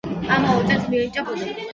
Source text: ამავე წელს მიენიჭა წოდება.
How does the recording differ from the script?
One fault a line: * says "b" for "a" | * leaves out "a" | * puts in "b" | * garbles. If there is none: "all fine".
all fine